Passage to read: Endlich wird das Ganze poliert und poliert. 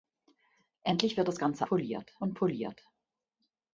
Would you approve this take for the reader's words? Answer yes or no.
yes